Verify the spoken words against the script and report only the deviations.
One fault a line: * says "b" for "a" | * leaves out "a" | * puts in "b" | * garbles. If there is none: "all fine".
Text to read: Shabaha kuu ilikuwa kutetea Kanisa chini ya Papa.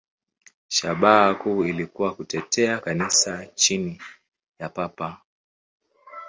all fine